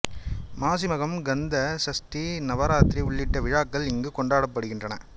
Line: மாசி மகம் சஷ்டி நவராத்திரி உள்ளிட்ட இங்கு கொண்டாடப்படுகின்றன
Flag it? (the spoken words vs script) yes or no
yes